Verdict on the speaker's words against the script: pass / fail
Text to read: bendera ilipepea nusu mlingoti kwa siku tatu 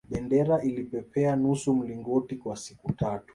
pass